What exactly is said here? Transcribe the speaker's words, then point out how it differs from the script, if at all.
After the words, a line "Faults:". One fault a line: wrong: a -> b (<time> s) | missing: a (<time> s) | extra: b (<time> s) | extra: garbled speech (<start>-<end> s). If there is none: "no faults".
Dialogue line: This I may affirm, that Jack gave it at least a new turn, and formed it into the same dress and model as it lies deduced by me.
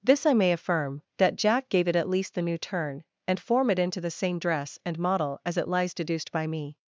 This I may affirm, that Jack gave it at least the new turn, and form it into the same dress and model as it lies deduced by me.
Faults:
wrong: a -> the (2.3 s)
wrong: formed -> form (3.4 s)